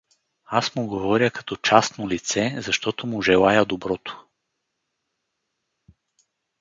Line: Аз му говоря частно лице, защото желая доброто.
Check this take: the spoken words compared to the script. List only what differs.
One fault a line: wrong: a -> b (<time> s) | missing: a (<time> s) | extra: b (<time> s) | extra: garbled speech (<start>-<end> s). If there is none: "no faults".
extra: като (1.3 s)
extra: му (3.1 s)